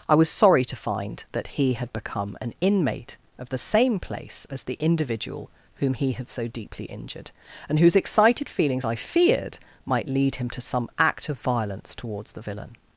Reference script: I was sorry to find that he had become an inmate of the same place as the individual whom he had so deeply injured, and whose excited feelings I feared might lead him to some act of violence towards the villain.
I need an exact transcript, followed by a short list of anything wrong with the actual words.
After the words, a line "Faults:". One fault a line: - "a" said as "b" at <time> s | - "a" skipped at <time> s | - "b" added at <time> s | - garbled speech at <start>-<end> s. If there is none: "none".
I was sorry to find that he had become an inmate of the same place as the individual whom he had so deeply injured, and whose excited feelings I feared might lead him to some act of violence towards the villain.
Faults:
none